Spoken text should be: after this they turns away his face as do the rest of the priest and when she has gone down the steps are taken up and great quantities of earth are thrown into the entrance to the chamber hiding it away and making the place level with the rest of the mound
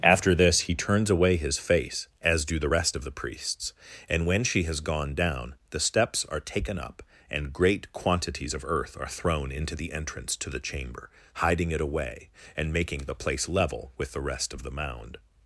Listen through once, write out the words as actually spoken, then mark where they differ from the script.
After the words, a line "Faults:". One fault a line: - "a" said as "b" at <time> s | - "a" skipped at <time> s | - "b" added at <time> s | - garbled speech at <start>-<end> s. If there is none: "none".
after this he turns away his face as do the rest of the priests and when she has gone down the steps are taken up and great quantities of earth are thrown into the entrance to the chamber hiding it away and making the place level with the rest of the mound
Faults:
- "they" said as "he" at 0.6 s
- "priest" said as "priests" at 3.1 s